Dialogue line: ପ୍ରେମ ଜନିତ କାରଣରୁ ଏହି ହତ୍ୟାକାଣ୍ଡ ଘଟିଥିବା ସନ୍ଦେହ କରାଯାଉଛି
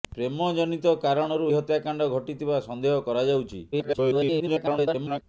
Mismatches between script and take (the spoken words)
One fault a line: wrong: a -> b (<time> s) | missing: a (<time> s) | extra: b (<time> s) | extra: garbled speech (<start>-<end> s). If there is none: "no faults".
missing: ଏହି (1.5 s)
extra: garbled speech (3.7-5.2 s)